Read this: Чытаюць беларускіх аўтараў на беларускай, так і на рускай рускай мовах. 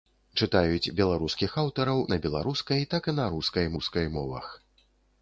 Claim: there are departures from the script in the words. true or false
false